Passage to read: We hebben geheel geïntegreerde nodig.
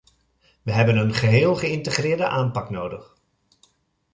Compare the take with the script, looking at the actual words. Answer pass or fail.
fail